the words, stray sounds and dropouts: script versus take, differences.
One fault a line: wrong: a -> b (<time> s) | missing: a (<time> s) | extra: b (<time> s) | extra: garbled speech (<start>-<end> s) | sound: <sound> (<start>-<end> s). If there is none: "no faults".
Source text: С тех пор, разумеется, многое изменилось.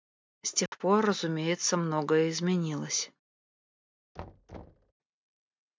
sound: dropout (0.7-0.7 s)
sound: thud (4.2-4.9 s)